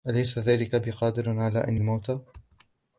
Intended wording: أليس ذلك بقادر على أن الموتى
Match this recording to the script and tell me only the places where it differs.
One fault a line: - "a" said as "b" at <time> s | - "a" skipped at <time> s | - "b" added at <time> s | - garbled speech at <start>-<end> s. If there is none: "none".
none